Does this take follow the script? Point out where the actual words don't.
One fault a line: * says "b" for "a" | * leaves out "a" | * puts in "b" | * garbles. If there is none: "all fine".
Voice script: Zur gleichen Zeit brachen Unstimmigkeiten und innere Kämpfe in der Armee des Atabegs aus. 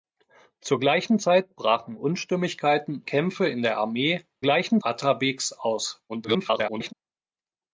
* leaves out "und innere"
* says "gleichen" for "des"
* garbles